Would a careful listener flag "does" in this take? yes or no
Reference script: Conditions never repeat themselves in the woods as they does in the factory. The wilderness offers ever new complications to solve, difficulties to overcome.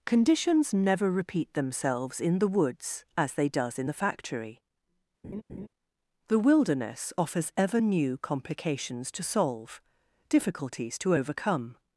no